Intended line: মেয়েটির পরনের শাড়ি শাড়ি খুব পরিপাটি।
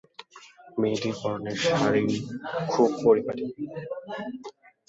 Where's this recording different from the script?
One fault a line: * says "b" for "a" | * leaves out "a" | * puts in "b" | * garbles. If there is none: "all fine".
* leaves out "শাড়ি"